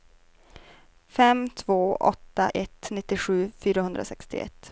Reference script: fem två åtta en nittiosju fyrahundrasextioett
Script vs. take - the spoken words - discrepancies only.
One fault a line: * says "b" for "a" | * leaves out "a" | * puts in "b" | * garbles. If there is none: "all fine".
* says "ett" for "en"